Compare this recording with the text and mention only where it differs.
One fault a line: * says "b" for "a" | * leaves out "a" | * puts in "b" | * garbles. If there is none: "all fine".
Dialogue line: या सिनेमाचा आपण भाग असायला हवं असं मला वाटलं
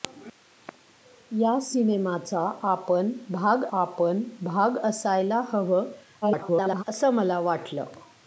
* puts in "आपण भाग"
* garbles